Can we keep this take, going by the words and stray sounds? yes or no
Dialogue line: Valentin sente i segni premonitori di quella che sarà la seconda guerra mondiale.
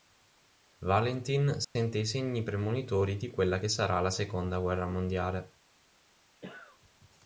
no